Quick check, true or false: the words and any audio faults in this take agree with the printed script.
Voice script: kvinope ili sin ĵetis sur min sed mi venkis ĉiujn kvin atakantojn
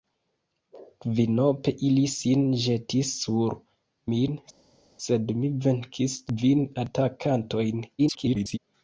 false